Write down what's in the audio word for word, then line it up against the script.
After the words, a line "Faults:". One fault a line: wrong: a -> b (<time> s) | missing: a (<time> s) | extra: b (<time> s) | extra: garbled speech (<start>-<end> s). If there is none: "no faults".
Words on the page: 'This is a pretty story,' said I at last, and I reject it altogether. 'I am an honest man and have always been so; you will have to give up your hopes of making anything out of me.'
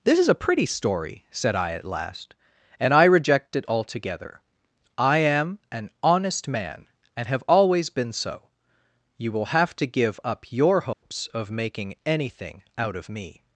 'This is a pretty story,' said I at last, and I reject it altogether. 'I am an honest man and have always been so; you will have to give up your hopes of making anything out of me.'
Faults:
no faults